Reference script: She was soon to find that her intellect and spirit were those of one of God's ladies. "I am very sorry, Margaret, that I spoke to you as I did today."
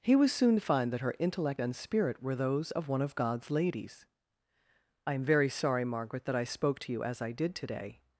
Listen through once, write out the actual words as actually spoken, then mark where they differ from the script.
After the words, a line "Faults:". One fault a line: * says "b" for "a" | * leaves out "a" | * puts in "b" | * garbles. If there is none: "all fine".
He was soon to find that her intellect and spirit were those of one of God's ladies. "I am very sorry, Margaret, that I spoke to you as I did today."
Faults:
* says "He" for "She"